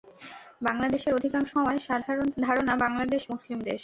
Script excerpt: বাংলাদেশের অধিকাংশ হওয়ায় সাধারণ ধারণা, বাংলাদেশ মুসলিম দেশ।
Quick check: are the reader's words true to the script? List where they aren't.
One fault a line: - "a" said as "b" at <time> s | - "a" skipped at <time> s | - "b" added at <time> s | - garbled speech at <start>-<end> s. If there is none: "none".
none